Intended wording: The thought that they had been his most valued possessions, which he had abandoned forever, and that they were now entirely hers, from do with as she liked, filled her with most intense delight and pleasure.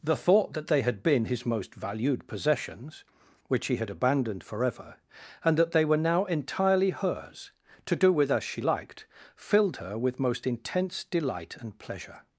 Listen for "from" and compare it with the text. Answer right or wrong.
wrong